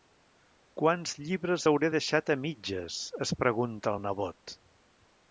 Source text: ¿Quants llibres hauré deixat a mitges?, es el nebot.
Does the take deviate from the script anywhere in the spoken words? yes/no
yes